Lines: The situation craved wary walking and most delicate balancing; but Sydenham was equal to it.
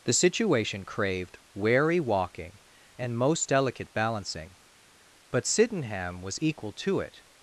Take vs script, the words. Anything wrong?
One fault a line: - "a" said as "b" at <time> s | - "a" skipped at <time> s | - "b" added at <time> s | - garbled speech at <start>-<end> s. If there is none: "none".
none